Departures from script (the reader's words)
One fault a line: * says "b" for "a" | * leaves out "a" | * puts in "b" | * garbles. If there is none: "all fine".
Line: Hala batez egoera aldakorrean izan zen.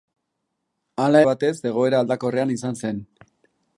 all fine